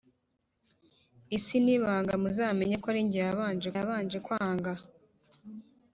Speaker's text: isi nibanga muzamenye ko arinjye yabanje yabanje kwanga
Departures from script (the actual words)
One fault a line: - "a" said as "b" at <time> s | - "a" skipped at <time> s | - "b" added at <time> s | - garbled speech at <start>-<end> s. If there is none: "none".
none